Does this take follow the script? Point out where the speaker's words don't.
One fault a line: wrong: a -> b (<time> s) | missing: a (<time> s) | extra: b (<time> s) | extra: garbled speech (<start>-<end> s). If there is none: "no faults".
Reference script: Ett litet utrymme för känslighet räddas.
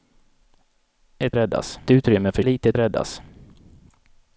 wrong: litet -> räddas (1.3 s)
wrong: känslighet -> litet (2.4 s)